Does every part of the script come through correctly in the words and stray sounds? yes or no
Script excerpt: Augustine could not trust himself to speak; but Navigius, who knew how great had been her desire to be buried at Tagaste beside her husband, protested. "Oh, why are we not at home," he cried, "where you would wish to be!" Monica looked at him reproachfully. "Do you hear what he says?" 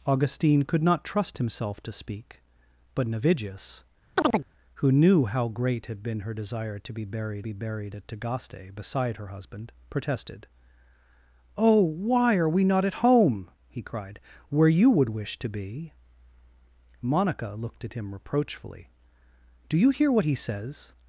no